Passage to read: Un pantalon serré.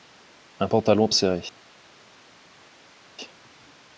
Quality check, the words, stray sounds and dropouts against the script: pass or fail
pass